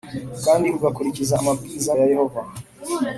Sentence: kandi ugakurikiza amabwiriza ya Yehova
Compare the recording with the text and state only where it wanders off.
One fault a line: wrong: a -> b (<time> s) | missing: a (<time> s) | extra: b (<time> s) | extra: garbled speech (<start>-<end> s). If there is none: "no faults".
no faults